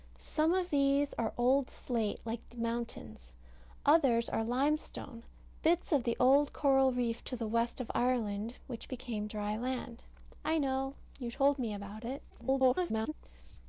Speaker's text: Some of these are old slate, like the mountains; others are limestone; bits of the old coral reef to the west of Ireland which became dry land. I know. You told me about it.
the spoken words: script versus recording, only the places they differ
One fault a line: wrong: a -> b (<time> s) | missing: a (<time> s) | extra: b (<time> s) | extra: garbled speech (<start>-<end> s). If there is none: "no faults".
extra: garbled speech (12.3-13.1 s)